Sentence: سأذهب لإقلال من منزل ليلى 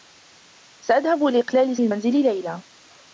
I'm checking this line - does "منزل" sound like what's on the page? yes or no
yes